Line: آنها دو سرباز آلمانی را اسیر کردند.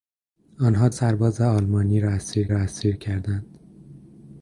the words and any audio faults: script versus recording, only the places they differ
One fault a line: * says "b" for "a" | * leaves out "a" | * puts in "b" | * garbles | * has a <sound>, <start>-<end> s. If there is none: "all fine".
* leaves out "دو"
* puts in "را اسیر"